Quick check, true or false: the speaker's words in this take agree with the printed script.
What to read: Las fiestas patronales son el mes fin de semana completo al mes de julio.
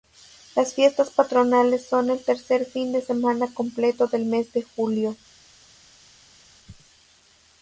false